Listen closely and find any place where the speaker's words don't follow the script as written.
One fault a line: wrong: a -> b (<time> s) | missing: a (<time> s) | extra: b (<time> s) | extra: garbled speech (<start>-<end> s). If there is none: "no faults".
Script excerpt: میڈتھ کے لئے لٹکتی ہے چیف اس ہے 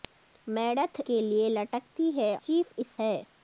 no faults